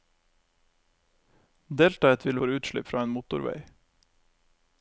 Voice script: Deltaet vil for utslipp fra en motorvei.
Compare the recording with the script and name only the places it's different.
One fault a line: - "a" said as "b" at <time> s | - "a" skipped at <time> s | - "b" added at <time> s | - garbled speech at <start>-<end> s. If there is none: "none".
none